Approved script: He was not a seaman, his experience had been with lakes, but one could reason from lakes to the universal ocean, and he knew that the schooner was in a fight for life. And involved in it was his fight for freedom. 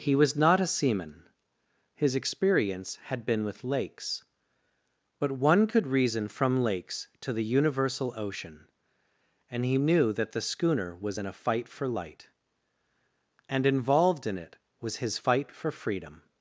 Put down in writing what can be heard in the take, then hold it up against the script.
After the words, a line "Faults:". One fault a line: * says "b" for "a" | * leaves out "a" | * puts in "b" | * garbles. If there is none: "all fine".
He was not a seaman, his experience had been with lakes, but one could reason from lakes to the universal ocean, and he knew that the schooner was in a fight for light. And involved in it was his fight for freedom.
Faults:
* says "light" for "life"